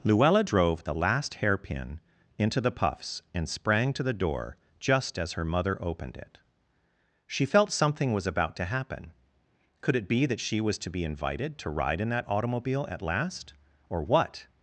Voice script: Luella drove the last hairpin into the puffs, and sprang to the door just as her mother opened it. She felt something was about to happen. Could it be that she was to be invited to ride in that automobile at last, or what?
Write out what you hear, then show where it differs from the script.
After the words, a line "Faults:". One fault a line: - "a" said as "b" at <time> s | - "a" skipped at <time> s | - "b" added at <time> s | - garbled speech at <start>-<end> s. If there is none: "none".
Luella drove the last hairpin into the puffs, and sprang to the door just as her mother opened it. She felt something was about to happen. Could it be that she was to be invited to ride in that automobile at last, or what?
Faults:
none